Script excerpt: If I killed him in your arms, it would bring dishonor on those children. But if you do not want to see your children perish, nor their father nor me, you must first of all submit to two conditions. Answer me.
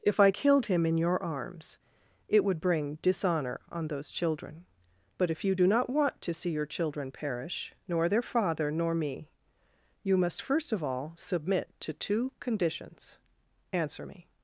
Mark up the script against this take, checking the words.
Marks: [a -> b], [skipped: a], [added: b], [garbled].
If I killed him in your arms, it would bring dishonor on those children. But if you do not want to see your children perish, nor their father nor me, you must first of all submit to two conditions. Answer me.